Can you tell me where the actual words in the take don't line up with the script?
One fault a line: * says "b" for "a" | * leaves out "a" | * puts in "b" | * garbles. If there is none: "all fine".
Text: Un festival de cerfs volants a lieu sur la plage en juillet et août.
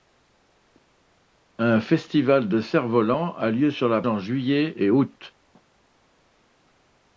* leaves out "plage"